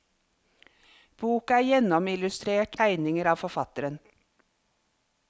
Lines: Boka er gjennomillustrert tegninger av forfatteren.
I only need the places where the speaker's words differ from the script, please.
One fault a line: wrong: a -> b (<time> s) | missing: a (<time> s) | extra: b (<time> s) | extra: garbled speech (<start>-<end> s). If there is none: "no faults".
no faults